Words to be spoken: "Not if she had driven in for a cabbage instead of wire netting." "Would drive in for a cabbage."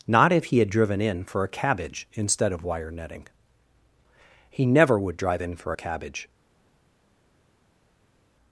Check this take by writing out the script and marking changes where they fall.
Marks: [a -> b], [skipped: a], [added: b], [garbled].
"Not if [she -> he] had driven in for a cabbage instead of wire netting." [added: He never] "Would drive in for a cabbage."